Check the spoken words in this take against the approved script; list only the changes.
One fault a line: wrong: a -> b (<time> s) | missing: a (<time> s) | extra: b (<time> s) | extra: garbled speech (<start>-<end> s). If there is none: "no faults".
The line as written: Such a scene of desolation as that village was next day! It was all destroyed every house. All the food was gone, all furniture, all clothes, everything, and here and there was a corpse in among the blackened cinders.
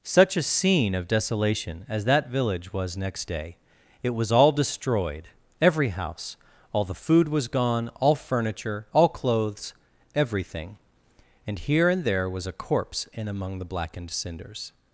no faults